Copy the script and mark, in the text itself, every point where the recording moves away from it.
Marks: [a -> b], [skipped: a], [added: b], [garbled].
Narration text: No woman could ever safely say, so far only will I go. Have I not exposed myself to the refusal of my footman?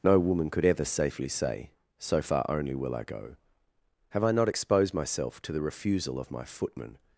No woman could ever safely say, so far only will I go. Have I not exposed myself to the refusal of my footman?